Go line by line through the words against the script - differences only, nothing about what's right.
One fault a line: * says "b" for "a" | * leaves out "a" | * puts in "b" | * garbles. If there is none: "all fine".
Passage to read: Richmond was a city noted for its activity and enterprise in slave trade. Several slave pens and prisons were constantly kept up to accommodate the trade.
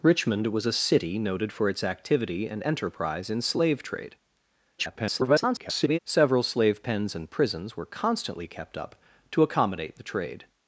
* garbles